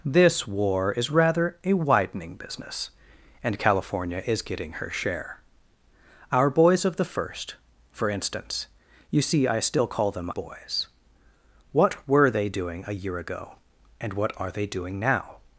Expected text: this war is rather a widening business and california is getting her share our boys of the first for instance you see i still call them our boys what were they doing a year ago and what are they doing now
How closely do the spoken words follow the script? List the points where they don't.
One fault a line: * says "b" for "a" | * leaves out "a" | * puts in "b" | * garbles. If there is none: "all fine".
* leaves out "our"